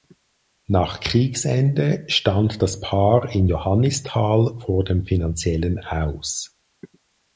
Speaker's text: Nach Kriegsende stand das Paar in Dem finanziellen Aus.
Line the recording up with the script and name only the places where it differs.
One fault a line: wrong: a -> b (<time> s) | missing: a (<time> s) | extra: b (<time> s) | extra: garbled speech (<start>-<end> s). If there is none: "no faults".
extra: Johannisthal vor (3.4 s)